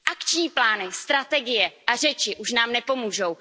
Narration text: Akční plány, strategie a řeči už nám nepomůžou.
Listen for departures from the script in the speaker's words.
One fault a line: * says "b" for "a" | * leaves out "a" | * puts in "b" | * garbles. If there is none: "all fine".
all fine